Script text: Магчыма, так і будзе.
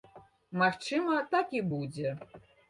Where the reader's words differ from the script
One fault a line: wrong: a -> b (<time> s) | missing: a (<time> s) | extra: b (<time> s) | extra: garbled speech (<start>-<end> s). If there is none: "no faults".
no faults